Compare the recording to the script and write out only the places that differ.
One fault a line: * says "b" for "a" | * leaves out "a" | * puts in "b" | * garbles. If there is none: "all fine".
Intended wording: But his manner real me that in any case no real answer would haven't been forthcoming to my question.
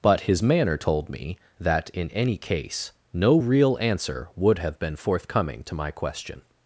* says "told" for "real"
* says "have" for "haven't"